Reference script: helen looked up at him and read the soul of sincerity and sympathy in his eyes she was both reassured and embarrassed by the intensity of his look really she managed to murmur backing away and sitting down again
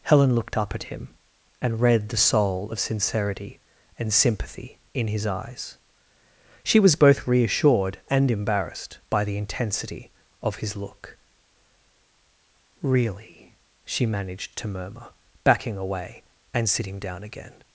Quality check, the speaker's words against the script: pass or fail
pass